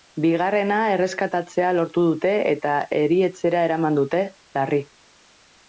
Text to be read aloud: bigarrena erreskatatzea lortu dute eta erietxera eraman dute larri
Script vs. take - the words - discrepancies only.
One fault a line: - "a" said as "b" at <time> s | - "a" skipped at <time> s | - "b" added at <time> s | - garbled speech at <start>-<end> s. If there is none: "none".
none